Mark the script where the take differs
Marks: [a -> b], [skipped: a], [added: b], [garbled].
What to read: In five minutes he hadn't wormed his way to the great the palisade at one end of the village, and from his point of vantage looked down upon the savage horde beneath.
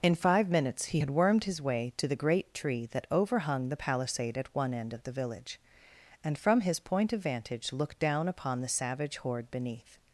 In five minutes he [hadn't -> had] wormed his way to the great [added: tree that overhung] the palisade at one end of the village, and from his point of vantage looked down upon the savage horde beneath.